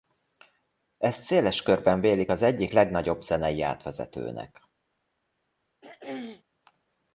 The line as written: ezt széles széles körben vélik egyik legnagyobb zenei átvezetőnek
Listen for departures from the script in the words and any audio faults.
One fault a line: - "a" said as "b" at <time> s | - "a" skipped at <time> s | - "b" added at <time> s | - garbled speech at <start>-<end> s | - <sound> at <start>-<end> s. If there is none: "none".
- "széles" skipped at 1.6 s
- "az" added at 2.3 s
- throat clearing at 5.8-6.4 s